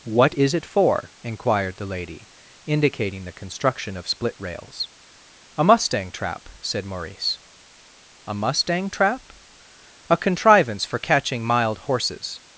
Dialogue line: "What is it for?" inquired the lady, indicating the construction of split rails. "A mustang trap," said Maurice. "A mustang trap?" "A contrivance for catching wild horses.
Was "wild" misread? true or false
true